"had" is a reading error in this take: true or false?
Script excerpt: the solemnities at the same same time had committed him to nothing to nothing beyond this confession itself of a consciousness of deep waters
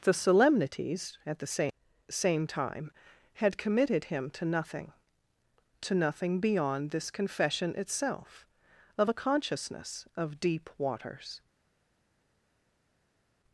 false